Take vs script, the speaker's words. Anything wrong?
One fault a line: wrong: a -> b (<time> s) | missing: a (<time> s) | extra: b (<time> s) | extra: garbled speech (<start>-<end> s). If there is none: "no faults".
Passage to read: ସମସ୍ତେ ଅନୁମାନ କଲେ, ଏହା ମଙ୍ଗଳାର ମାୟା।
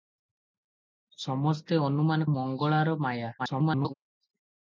missing: କଲେ ଏହା (2.3 s)
extra: garbled speech (3.4-3.9 s)